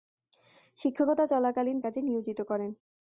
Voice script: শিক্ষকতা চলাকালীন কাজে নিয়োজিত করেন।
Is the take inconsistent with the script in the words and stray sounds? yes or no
no